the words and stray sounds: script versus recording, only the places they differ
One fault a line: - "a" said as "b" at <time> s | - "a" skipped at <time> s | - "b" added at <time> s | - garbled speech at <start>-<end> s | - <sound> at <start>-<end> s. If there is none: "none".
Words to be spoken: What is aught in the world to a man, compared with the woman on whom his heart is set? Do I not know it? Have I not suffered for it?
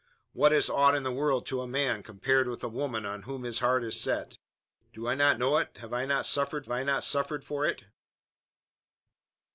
- "I not suffered" added at 6.7 s